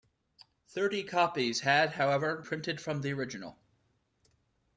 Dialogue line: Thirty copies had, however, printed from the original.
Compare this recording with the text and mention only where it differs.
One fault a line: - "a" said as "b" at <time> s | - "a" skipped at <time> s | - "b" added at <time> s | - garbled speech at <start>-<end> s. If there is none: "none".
none